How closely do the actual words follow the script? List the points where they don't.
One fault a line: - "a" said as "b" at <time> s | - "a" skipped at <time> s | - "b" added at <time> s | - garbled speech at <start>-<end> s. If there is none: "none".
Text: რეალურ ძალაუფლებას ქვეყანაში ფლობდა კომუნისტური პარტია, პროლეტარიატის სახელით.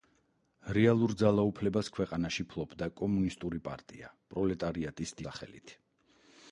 none